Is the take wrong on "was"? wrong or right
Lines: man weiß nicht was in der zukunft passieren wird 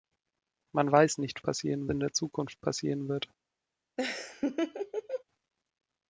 wrong